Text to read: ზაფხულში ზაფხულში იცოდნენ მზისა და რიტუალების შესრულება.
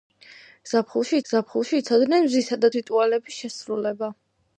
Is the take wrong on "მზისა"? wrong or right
right